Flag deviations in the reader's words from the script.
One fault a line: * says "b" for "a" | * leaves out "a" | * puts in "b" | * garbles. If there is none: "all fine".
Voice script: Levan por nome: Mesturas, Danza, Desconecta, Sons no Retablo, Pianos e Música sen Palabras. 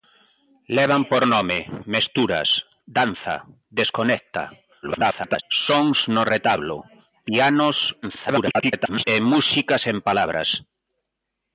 * garbles
* garbles